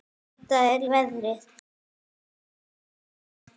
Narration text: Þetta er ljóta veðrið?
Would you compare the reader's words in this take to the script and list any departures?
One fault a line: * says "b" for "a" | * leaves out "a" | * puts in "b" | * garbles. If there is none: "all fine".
* leaves out "ljóta"